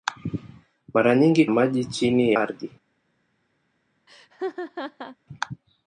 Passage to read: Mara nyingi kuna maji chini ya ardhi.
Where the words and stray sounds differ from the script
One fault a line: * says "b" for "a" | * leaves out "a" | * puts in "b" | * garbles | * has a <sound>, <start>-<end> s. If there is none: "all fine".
* leaves out "kuna"
* leaves out "ya"
* has a laugh, 4.1-5.2 s